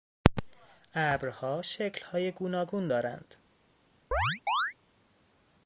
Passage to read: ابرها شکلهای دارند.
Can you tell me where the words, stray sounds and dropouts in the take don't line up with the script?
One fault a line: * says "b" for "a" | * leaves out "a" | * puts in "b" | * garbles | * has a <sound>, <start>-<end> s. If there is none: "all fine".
* puts in "گوناگون"
* has a chirp, 4.1-4.7 s